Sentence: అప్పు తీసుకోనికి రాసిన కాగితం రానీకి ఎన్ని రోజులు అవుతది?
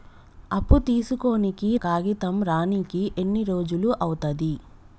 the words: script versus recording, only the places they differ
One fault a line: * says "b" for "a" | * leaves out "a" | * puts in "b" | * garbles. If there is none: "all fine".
* leaves out "రాసిన"